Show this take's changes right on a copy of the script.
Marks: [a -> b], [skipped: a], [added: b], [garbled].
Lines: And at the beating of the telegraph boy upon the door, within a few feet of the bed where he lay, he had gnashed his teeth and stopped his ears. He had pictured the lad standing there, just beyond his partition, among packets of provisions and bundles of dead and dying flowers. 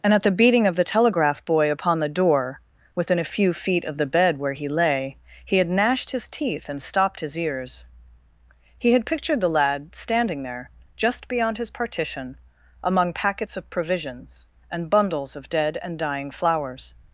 And at the beating of the telegraph boy upon the door, within a few feet of the bed where he lay, he had gnashed his teeth and stopped his ears. He had pictured the lad standing there, just beyond his partition, among packets of provisions and bundles of dead and dying flowers.